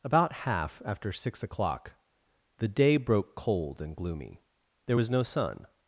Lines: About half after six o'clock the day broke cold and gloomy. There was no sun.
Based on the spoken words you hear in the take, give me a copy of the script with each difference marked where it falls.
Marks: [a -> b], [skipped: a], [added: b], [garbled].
About half after six o'clock the day broke cold and gloomy. There was no sun.